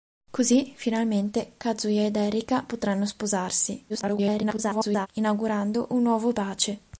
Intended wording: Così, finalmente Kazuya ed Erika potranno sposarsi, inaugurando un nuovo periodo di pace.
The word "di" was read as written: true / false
false